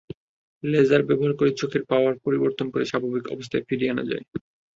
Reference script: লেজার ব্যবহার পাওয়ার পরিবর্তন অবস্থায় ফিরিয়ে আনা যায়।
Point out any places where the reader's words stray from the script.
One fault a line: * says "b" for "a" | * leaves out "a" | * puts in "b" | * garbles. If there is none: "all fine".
* puts in "করে চোখের"
* puts in "করে স্বাভাবিক"